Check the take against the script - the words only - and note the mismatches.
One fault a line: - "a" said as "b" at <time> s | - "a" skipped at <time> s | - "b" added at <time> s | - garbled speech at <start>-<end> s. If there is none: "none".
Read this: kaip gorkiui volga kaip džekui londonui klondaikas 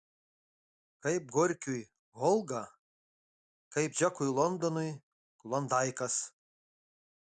none